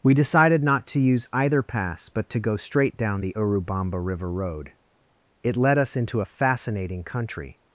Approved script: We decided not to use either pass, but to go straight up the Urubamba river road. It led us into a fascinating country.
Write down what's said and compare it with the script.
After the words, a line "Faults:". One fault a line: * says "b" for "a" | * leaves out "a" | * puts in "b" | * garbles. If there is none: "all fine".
We decided not to use either pass, but to go straight down the Urubamba river road. It led us into a fascinating country.
Faults:
* says "down" for "up"